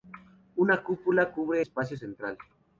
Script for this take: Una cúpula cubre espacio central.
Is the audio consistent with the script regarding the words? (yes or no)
yes